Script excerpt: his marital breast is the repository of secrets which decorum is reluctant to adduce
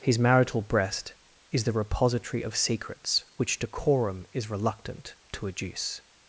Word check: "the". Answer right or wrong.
right